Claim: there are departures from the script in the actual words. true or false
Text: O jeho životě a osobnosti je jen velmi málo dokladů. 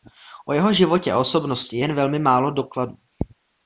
false